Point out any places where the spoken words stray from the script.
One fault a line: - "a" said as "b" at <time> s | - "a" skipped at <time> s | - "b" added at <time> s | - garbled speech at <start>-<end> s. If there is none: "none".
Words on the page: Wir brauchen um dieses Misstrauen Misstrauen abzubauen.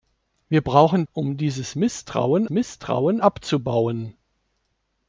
none